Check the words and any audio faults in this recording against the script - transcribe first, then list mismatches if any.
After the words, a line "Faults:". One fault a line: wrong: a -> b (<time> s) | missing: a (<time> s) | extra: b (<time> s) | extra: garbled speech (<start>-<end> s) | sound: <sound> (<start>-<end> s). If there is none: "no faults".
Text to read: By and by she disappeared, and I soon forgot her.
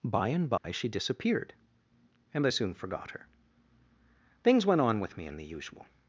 By and by she disappeared, and I soon forgot her. Things went on with me in the usual
Faults:
sound: dropout (0.6-0.6 s)
extra: Things went on with me in the usual (4.4 s)